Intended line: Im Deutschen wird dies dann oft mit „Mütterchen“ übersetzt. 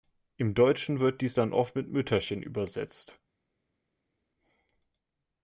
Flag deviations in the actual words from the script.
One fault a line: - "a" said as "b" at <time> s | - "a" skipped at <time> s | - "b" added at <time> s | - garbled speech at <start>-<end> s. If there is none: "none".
none